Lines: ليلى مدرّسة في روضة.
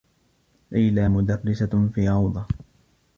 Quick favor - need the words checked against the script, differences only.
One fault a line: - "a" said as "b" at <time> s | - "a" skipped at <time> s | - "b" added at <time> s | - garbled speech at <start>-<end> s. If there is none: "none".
none